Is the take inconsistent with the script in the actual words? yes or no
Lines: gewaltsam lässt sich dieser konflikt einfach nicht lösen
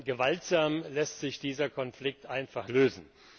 yes